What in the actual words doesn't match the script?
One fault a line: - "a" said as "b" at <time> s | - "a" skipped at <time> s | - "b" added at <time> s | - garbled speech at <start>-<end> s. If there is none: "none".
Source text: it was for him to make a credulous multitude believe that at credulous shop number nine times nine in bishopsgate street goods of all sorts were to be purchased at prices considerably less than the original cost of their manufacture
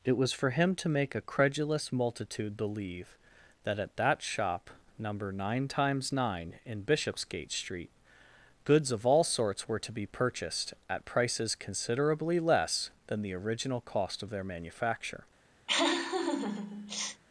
- "credulous" said as "that" at 4.0 s